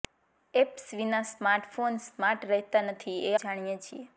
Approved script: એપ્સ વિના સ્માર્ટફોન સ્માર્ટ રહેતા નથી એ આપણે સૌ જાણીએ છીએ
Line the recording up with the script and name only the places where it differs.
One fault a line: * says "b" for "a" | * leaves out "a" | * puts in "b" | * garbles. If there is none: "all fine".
* leaves out "આપણે સૌ"